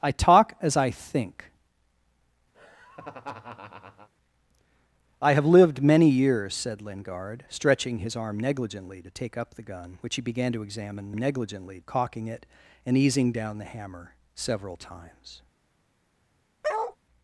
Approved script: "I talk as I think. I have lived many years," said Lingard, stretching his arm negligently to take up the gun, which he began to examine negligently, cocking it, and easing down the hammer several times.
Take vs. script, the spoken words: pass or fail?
pass